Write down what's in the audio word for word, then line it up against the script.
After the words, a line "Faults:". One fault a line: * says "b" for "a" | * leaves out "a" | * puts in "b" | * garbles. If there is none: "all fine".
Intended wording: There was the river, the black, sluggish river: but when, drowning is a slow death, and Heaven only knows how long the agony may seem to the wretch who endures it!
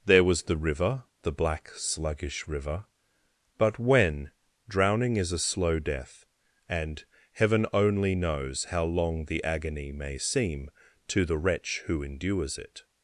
There was the river, the black, sluggish river: but when, drowning is a slow death, and Heaven only knows how long the agony may seem to the wretch who endures it!
Faults:
all fine